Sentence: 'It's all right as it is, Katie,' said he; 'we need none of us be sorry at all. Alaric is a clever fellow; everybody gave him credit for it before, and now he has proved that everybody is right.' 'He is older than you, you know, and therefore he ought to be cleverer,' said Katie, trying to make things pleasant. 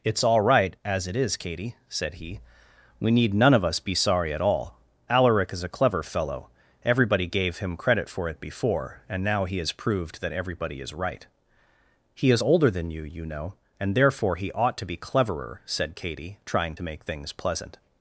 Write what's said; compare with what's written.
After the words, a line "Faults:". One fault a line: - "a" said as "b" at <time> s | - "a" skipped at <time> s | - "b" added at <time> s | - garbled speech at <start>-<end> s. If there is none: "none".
'It's all right as it is, Katie,' said he; 'we need none of us be sorry at all. Alaric is a clever fellow; everybody gave him credit for it before, and now he has proved that everybody is right.' 'He is older than you, you know, and therefore he ought to be cleverer,' said Katie, trying to make things pleasant.
Faults:
none